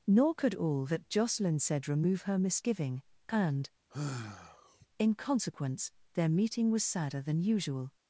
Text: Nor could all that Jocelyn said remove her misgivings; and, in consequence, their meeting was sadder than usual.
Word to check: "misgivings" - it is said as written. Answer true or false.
false